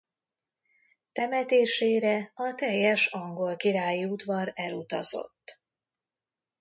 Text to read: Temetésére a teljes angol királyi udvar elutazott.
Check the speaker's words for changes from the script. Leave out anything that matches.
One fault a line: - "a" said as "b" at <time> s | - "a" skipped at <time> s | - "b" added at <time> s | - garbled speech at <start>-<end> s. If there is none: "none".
none